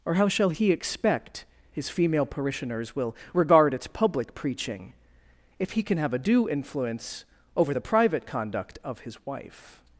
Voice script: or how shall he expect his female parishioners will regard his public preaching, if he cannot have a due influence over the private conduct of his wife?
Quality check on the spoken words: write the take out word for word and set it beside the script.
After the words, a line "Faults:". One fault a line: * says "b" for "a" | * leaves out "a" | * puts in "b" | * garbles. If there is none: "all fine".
or how shall he expect his female parishioners will regard its public preaching, if he can have a due influence over the private conduct of his wife?
Faults:
* says "its" for "his"
* says "can" for "cannot"